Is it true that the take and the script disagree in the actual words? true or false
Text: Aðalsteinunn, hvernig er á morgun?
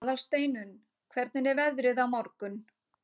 true